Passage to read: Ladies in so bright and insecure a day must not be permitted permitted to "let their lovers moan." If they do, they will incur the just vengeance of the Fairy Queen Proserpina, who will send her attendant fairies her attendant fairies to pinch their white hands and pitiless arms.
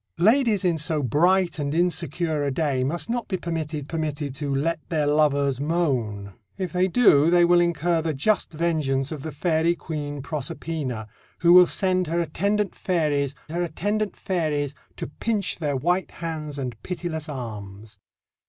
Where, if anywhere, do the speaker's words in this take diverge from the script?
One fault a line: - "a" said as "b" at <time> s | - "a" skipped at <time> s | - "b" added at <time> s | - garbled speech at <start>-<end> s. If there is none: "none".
none